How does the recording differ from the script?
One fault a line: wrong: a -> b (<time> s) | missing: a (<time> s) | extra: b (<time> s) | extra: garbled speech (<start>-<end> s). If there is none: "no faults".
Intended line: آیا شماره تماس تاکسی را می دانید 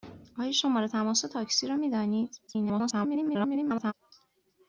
extra: garbled speech (2.5-3.9 s)